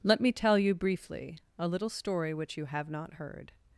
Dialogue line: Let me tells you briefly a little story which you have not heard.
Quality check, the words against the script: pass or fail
fail